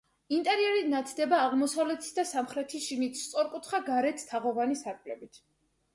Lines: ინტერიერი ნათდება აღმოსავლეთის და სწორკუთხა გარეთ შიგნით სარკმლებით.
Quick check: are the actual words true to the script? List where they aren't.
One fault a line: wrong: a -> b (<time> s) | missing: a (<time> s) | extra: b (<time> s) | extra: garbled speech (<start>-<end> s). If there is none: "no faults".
extra: სამხრეთის შიგნით (2.3 s)
wrong: შიგნით -> თაღოვანი (4.3 s)